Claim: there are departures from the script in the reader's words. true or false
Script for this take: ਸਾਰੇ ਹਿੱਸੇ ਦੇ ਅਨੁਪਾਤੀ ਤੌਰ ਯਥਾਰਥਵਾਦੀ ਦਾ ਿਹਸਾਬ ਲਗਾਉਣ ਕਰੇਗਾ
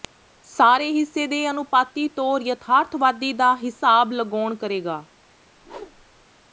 false